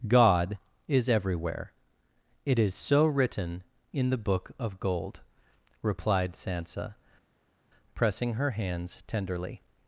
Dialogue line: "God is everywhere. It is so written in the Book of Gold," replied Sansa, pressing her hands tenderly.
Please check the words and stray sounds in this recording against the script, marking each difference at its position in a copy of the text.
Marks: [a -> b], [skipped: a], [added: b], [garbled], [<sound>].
"God is everywhere. It is so written in the Book of Gold," replied Sansa, pressing her hands tenderly.